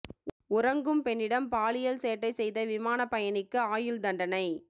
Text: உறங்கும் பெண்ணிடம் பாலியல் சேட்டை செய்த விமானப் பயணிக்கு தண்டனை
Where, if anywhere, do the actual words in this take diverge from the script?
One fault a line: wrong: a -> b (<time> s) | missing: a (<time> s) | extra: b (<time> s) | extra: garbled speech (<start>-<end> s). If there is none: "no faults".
extra: ஆயுள் (3.7 s)